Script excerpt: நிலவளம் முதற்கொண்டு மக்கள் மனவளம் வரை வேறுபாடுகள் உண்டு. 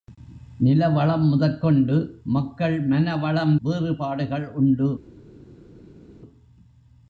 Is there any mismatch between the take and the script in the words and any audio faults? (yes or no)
yes